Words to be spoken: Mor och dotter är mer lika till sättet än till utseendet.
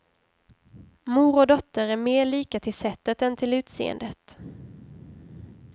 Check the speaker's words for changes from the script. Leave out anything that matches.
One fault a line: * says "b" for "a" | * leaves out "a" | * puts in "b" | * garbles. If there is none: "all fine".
all fine